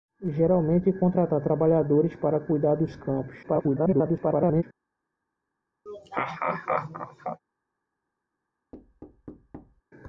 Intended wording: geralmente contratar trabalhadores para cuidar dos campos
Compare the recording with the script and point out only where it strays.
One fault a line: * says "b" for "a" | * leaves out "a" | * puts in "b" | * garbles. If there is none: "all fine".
* garbles